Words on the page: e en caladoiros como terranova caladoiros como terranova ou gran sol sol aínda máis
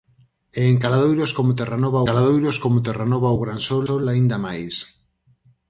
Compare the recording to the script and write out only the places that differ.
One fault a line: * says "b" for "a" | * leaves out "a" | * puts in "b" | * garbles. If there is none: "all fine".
all fine